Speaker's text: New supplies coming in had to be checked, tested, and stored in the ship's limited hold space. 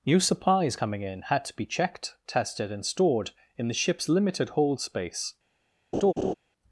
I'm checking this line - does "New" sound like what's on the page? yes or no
yes